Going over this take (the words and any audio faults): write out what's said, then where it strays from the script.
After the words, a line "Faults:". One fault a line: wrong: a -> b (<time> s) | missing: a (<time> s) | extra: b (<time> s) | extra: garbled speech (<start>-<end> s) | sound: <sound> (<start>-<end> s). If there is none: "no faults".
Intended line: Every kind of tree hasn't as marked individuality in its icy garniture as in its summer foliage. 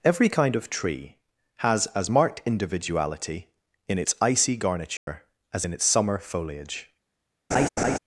Every kind of tree has as marked individuality in its icy garniture as in its summer foliage.
Faults:
wrong: hasn't -> has (1.6 s)
sound: dropout (5.0-5.1 s)
sound: laugh (7.5-8.0 s)